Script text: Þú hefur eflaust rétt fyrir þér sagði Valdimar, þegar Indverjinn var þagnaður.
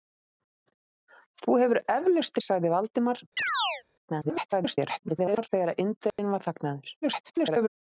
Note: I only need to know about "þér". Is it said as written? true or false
false